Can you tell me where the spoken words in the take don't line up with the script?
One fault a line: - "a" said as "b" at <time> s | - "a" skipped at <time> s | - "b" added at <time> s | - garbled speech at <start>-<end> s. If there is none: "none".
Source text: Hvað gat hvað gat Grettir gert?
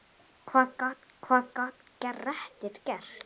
none